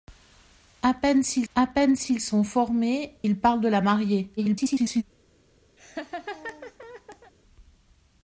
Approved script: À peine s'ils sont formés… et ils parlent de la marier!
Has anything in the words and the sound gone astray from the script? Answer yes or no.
yes